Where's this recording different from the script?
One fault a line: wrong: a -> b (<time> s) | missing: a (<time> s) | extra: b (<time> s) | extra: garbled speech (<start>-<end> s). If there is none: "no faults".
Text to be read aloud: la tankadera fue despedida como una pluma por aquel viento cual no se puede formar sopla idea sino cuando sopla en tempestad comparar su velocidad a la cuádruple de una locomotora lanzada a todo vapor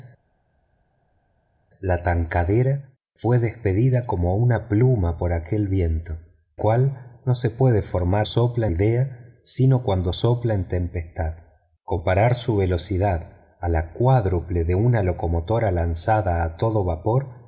no faults